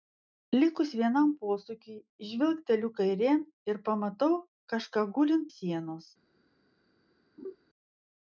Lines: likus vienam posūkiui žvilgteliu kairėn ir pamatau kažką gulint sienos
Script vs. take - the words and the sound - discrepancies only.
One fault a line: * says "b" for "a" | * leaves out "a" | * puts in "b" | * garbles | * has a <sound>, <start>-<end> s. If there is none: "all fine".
* has a laugh, 7.4-7.6 s